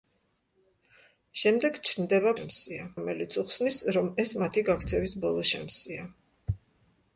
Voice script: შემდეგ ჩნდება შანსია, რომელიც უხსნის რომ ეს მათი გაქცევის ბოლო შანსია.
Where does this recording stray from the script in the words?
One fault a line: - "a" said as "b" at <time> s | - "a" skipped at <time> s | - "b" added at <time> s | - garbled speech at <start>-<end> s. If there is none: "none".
none